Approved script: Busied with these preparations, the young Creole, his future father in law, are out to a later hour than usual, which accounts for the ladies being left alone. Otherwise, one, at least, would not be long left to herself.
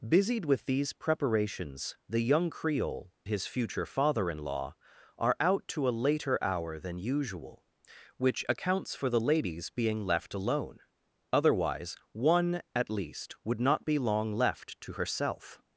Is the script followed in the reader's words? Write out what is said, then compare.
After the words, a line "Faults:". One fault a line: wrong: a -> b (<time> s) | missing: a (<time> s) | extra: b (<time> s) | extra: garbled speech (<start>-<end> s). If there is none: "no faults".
Busied with these preparations, the young Creole, his future father in law, are out to a later hour than usual, which accounts for the ladies being left alone. Otherwise, one, at least, would not be long left to herself.
Faults:
no faults